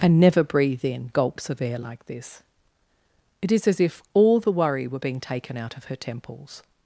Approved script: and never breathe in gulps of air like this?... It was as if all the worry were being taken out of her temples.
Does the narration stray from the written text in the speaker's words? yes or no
yes